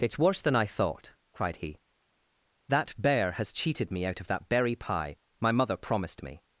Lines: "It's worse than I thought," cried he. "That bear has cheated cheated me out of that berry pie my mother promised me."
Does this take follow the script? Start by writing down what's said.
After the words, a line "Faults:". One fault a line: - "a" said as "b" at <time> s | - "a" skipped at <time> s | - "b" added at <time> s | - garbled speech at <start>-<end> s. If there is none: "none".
"It's worse than I thought," cried he. "That bear has cheated me out of that berry pie my mother promised me."
Faults:
- "cheated" skipped at 3.9 s